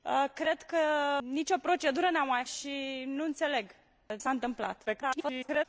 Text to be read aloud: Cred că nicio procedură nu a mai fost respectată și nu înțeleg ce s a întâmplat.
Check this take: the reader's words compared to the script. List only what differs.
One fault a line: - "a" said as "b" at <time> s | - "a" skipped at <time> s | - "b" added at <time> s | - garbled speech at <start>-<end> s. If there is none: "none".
- "fost respectată" skipped at 2.4 s
- "ce" skipped at 3.7 s
- garbled speech at 4.9-5.7 s